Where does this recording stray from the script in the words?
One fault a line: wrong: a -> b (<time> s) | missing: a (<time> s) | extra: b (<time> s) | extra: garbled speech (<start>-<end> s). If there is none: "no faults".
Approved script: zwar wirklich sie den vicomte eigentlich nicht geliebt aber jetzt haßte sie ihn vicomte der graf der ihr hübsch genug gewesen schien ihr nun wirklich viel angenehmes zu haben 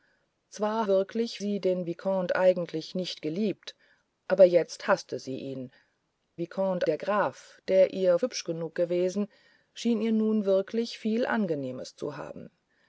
no faults